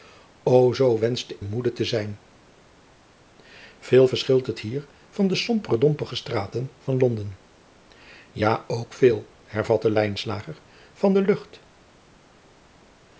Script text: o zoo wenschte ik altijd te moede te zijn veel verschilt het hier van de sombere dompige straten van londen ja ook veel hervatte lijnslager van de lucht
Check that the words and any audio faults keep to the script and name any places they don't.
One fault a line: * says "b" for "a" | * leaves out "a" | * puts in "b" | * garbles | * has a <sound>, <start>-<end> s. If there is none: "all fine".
* leaves out "ik altijd te"